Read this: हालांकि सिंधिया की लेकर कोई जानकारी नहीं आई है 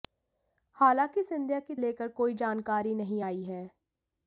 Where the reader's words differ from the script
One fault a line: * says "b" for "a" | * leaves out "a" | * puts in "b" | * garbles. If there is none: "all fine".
all fine